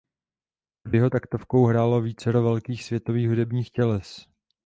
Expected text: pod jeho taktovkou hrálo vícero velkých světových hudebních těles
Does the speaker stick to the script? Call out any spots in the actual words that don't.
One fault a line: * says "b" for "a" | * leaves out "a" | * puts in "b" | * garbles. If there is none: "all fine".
all fine